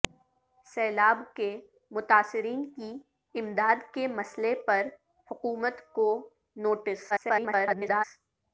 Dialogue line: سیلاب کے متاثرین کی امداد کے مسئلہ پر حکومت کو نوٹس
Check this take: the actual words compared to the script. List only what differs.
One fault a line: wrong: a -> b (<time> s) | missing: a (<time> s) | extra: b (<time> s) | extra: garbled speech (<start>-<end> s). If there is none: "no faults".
extra: garbled speech (7.1-8.0 s)